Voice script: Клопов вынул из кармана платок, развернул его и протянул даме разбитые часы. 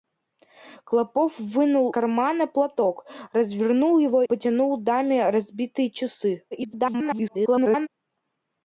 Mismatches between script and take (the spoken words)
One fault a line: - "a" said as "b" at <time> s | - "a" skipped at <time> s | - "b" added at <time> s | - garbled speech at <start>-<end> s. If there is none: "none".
- "из" skipped at 1.9 s
- "и" skipped at 4.2 s
- garbled speech at 6.5-7.9 s